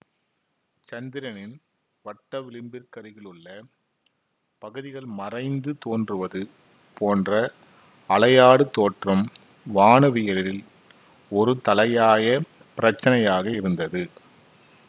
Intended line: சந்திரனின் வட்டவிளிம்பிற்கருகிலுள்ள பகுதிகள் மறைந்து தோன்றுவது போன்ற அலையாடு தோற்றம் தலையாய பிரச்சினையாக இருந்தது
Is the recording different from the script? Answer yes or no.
yes